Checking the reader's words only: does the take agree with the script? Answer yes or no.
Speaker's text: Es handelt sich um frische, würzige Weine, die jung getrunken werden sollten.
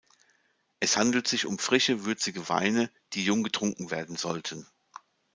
yes